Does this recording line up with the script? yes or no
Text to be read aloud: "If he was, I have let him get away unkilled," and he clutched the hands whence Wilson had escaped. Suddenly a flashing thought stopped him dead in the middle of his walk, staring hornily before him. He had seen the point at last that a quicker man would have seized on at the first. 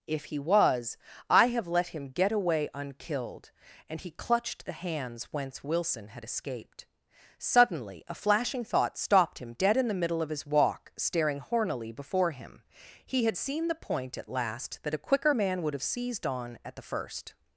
yes